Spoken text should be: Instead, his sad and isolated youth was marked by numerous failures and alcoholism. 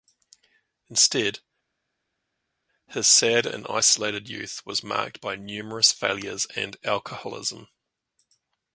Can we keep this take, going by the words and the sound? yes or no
yes